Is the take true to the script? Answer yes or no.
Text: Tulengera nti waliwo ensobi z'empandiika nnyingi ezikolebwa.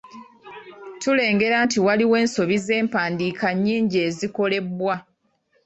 yes